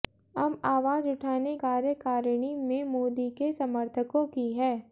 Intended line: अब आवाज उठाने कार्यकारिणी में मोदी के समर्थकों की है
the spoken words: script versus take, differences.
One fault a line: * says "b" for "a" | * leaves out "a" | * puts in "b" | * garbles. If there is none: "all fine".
all fine